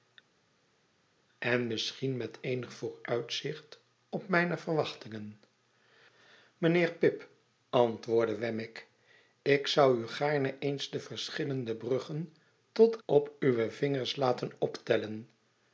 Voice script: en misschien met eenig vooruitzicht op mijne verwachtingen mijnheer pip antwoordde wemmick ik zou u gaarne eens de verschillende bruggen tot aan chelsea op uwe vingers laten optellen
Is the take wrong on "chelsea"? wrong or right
wrong